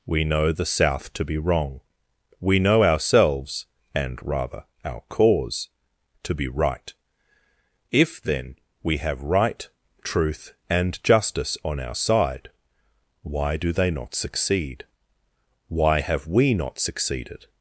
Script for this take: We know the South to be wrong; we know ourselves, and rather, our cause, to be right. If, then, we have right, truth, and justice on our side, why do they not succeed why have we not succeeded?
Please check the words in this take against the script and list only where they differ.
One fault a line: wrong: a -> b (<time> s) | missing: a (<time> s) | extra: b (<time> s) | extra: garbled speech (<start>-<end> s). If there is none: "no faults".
no faults